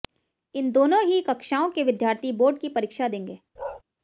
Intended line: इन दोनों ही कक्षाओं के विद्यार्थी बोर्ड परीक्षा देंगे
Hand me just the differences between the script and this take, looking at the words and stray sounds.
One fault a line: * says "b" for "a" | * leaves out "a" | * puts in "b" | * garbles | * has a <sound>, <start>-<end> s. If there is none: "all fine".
* puts in "की"
* has a bark, 3.6-3.8 s